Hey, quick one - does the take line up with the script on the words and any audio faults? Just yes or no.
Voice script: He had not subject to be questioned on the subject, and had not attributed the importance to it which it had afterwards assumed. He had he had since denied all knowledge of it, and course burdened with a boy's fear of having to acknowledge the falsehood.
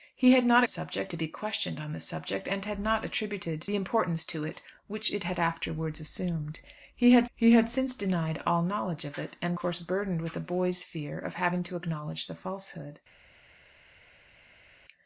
yes